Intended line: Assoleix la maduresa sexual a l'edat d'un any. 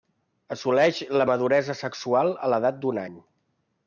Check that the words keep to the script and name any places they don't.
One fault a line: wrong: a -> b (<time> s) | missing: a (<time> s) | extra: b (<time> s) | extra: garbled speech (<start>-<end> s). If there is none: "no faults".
no faults